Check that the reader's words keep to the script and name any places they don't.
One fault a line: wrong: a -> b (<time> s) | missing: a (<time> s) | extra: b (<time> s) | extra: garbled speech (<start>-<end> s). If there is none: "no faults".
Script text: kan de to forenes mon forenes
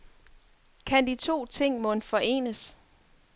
wrong: forenes -> ting (1.4 s)